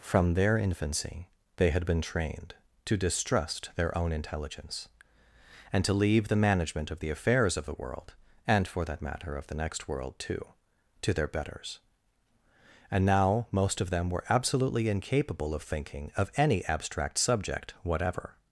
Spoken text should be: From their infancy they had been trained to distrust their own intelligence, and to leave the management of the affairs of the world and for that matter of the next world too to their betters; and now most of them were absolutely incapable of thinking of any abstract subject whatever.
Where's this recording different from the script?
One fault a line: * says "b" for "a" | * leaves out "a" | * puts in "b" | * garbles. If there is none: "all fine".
all fine